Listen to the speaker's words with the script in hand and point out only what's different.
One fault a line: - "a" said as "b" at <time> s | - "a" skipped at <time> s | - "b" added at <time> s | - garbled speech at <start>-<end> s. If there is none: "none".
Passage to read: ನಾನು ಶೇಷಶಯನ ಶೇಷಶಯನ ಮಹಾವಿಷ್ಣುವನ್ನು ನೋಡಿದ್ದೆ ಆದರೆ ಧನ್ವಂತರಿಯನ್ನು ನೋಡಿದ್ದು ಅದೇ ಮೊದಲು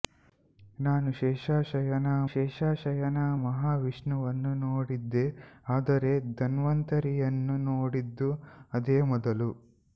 none